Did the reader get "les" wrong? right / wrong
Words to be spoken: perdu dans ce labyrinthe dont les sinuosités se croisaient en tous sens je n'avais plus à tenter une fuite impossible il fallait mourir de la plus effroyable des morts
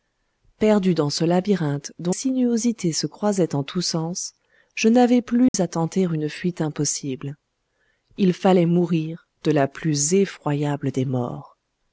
wrong